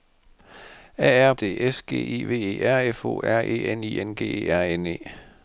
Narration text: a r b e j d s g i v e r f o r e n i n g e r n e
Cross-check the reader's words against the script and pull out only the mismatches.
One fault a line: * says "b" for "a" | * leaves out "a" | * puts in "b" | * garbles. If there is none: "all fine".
* leaves out "b e j"